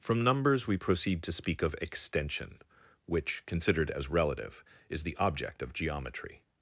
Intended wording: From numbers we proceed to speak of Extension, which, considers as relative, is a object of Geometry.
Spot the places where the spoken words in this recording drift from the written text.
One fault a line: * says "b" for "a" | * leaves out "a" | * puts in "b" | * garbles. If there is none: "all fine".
* says "considered" for "considers"
* says "the" for "a"